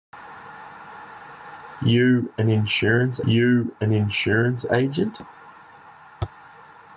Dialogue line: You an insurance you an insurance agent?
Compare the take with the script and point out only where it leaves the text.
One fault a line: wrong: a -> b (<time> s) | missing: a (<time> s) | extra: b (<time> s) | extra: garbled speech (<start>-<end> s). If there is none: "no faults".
no faults